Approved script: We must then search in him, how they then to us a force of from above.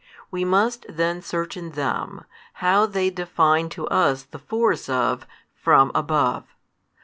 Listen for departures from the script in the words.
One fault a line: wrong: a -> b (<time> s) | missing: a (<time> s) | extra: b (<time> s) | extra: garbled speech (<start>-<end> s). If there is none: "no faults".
wrong: him -> them (1.7 s)
wrong: then -> define (3.1 s)
wrong: a -> the (4.2 s)